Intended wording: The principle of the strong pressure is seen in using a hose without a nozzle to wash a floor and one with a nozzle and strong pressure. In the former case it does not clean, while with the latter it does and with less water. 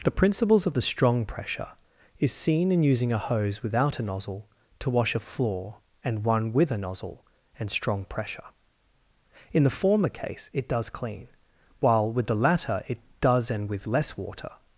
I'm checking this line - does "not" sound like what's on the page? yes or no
no